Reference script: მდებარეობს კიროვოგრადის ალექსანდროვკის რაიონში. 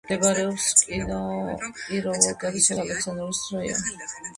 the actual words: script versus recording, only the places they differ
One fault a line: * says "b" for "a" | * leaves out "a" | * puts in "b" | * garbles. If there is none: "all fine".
all fine